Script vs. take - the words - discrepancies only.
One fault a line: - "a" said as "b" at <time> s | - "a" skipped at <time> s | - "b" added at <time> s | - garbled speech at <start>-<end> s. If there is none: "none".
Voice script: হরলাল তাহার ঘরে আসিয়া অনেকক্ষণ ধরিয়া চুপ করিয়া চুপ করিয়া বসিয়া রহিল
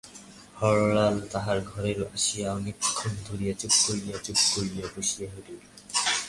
none